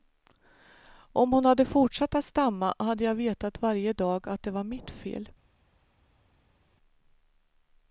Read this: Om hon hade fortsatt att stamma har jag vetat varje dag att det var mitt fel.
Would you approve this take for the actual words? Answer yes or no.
no